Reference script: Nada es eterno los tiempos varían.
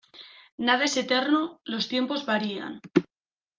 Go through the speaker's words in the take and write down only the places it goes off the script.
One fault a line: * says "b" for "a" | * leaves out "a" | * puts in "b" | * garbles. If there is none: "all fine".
all fine